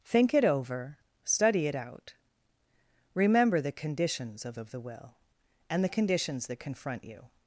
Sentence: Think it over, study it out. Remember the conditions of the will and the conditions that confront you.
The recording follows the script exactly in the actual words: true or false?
false